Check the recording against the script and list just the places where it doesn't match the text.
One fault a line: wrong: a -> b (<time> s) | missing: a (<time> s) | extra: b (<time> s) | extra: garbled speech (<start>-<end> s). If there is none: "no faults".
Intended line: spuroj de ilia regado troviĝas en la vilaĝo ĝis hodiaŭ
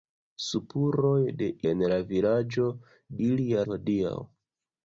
missing: ilia regado troviĝas (1.5 s)
wrong: ĝis -> ilia (3.3 s)